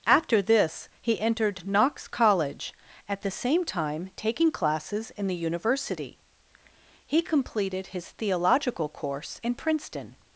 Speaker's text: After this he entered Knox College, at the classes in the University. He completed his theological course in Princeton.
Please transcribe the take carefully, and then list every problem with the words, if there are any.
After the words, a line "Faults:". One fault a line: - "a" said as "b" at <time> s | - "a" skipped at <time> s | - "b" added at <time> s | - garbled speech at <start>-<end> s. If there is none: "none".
After this he entered Knox College, at the same time taking classes in the University. He completed his theological course in Princeton.
Faults:
- "same time taking" added at 3.3 s